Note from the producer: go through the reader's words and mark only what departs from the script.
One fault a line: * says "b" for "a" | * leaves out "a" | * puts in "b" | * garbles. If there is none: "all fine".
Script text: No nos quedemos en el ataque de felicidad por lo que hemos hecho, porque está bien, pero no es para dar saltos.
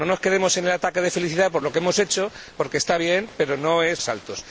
* leaves out "para dar"